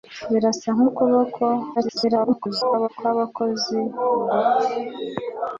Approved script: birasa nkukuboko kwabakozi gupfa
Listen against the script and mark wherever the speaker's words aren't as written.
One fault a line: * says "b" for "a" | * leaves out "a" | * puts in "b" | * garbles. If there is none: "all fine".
* garbles